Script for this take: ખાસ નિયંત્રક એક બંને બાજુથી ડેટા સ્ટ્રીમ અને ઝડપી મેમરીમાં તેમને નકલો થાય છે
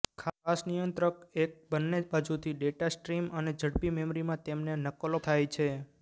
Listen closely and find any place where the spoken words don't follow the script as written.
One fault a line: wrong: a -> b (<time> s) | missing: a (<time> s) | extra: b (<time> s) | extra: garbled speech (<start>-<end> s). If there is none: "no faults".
no faults